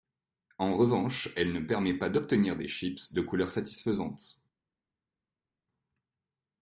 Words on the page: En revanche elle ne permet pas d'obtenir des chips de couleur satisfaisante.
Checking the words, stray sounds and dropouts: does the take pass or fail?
pass